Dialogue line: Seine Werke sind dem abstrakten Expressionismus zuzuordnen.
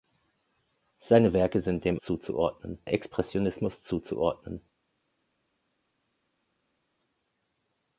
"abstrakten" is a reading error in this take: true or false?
true